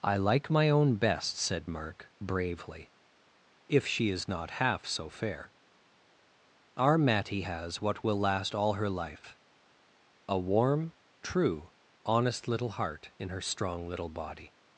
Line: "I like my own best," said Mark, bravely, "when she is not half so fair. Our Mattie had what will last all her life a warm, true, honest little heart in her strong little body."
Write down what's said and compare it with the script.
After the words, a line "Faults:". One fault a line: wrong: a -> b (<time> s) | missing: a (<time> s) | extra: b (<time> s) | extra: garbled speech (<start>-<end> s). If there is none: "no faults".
"I like my own best," said Mark, bravely, "if she is not half so fair. Our Mattie has what will last all her life a warm, true, honest little heart in her strong little body."
Faults:
wrong: when -> if (3.7 s)
wrong: had -> has (7.4 s)